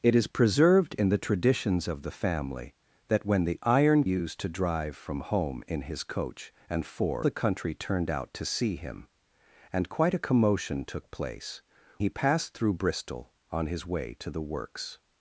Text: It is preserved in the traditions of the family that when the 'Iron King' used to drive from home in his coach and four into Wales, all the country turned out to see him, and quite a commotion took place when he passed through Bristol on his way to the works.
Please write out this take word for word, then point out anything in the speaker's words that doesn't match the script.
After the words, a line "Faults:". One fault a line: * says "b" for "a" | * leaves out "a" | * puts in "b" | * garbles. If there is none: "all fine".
It is preserved in the traditions of the family that when the 'Iron' Used to drive from home in his coach and four the country turned out to see him, and quite a commotion took place he passed through Bristol on his way to the works.
Faults:
* leaves out "King"
* leaves out "into Wales all"
* leaves out "when"